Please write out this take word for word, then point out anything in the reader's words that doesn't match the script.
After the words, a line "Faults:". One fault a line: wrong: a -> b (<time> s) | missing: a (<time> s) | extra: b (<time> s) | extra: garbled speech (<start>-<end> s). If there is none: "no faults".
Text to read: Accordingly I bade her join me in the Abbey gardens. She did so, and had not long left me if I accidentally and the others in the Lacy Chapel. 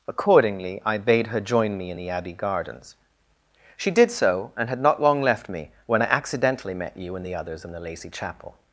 Accordingly I bade her join me in the Abbey gardens. She did so, and had not long left me when I accidentally met you and the others in the Lacy Chapel.
Faults:
wrong: if -> when (5.9 s)
extra: met you (6.7 s)